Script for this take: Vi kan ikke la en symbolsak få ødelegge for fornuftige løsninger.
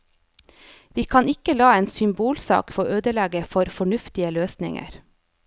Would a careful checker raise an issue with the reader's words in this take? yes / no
no